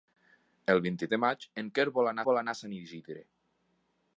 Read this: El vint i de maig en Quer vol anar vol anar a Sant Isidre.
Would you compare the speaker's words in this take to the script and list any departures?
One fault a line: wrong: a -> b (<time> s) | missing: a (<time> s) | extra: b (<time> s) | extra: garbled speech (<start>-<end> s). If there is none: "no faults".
no faults